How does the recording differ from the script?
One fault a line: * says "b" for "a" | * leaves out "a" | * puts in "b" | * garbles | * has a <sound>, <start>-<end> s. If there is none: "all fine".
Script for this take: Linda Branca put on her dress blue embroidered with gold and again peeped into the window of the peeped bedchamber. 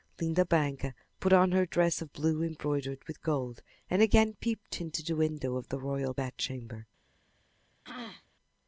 * puts in "of"
* says "royal" for "peeped"
* has a throat clearing, 7.8-8.3 s